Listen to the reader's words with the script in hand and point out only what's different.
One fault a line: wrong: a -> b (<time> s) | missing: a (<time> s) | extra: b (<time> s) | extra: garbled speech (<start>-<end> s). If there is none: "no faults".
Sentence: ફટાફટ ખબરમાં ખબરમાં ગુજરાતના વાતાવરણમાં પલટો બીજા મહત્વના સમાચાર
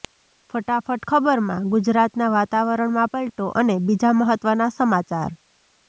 missing: ખબરમાં (1.7 s)
extra: અને (3.6 s)